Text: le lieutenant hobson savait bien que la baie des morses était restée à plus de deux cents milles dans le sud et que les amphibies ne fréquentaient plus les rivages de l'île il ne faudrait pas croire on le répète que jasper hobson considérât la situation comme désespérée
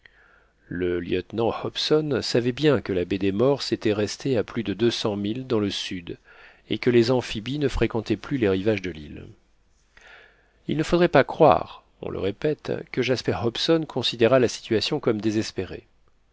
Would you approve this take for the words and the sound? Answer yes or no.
yes